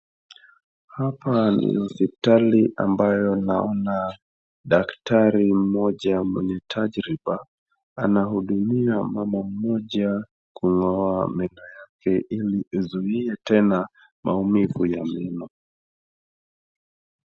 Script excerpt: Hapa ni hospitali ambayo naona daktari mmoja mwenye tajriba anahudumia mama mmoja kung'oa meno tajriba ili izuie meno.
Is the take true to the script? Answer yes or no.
no